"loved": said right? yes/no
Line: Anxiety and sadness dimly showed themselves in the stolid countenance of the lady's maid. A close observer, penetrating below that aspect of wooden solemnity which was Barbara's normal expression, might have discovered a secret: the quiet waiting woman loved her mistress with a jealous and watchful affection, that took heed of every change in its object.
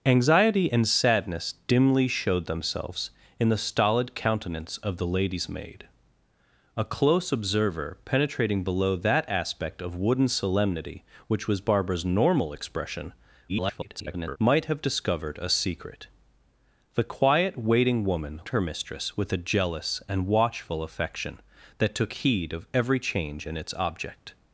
no